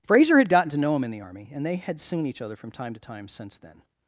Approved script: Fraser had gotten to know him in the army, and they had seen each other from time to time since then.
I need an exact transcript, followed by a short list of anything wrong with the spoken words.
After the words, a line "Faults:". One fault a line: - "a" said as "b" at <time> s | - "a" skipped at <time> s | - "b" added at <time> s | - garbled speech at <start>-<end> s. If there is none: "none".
Fraser had gotten to know him in the army, and they had seen each other from time to time since then.
Faults:
none